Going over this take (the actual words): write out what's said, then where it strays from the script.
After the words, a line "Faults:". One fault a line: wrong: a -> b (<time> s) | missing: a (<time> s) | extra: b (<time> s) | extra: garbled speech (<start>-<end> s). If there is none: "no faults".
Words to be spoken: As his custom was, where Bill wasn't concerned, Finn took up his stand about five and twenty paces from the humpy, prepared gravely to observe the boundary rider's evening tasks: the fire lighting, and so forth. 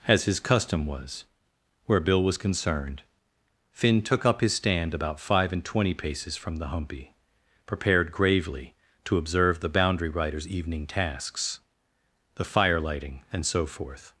As his custom was, where Bill was concerned, Finn took up his stand about five and twenty paces from the humpy, prepared gravely to observe the boundary rider's evening tasks: the fire lighting, and so forth.
Faults:
wrong: wasn't -> was (2.2 s)